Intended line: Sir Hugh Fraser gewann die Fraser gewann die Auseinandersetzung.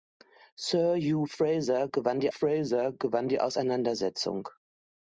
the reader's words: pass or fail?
pass